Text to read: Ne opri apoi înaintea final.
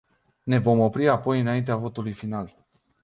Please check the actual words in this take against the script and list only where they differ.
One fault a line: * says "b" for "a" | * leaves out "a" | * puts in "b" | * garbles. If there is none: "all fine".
* puts in "vom"
* puts in "votului"